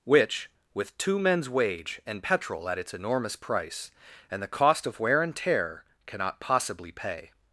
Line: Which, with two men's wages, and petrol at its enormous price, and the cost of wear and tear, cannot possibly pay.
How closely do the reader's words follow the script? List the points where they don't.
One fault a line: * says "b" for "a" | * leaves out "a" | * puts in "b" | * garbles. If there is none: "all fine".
* says "wage" for "wages"